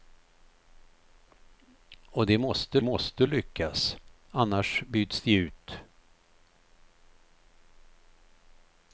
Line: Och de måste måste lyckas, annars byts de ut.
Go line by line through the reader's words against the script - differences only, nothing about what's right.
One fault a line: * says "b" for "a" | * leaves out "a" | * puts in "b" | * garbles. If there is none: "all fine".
all fine